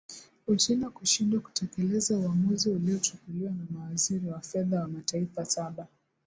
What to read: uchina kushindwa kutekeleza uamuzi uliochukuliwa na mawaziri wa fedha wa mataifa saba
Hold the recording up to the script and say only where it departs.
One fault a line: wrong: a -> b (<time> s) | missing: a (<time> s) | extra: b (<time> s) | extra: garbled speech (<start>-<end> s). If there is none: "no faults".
no faults